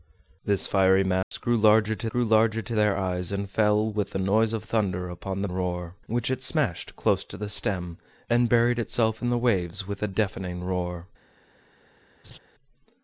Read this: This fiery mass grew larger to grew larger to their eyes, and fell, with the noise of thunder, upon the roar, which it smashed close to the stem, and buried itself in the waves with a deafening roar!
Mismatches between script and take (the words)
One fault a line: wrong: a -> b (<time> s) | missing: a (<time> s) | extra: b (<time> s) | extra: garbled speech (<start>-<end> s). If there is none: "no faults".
no faults